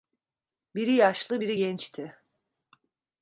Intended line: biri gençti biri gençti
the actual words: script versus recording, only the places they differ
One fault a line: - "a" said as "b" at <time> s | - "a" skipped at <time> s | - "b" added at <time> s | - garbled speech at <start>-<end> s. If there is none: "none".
- "gençti" said as "yaşlı" at 0.9 s